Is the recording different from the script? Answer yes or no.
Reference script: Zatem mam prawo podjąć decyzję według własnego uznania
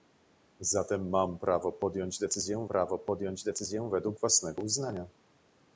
yes